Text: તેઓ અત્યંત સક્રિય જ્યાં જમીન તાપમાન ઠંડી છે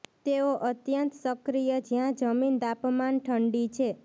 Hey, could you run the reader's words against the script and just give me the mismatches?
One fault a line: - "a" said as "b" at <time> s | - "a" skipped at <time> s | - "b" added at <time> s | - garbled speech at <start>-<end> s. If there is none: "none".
none